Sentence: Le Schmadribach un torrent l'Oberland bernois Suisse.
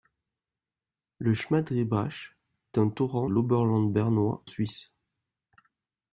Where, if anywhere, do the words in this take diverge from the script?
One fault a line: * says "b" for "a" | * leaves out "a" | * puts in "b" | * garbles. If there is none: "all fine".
all fine